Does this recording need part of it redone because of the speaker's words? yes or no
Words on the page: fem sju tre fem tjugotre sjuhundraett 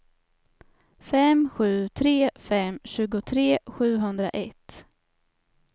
no